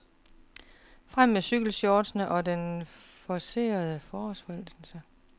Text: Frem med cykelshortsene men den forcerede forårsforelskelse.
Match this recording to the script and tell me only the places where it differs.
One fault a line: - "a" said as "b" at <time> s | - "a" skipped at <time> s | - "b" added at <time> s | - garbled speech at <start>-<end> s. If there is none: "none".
- "men" said as "og" at 2.3 s